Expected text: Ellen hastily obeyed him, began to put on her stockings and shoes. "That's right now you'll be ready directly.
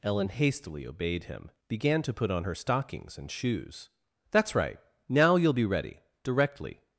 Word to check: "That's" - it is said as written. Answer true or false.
true